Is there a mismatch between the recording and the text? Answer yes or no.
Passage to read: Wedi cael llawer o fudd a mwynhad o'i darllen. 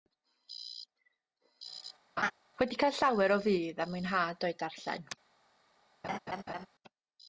no